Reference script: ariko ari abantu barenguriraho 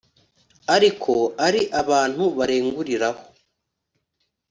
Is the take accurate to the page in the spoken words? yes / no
yes